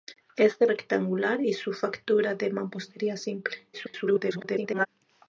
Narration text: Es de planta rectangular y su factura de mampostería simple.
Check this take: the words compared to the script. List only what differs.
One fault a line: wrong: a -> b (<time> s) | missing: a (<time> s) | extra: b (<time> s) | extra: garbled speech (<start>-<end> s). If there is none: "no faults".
missing: planta (0.7 s)
extra: garbled speech (3.7-4.9 s)